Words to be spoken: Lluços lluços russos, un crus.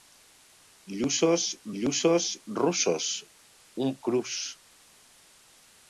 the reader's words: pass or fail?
pass